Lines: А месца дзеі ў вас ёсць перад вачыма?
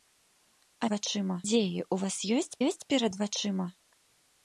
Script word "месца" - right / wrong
wrong